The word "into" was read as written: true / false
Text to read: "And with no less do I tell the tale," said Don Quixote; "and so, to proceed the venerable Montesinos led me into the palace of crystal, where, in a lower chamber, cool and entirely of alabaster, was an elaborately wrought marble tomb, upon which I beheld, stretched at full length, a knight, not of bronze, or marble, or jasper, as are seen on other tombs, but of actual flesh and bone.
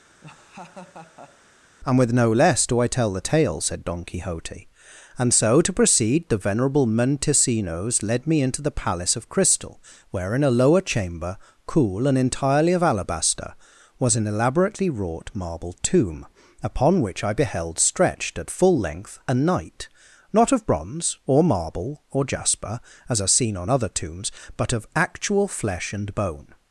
true